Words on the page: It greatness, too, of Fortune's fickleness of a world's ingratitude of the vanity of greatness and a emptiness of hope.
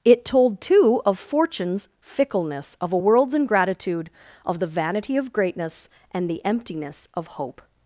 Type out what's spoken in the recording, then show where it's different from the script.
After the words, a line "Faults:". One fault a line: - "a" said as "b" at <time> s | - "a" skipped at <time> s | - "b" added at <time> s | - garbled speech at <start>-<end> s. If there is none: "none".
It told, too, of Fortune's fickleness of a world's ingratitude of the vanity of greatness and the emptiness of hope.
Faults:
- "greatness" said as "told" at 0.2 s
- "a" said as "the" at 6.3 s